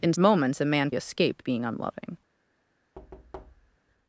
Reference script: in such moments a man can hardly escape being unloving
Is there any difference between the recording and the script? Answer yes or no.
yes